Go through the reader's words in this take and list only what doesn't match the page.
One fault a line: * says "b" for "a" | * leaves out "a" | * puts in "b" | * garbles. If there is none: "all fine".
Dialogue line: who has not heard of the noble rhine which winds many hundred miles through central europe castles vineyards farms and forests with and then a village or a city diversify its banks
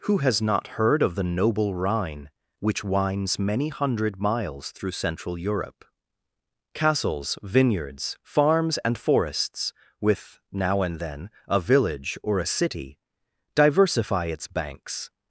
* puts in "now"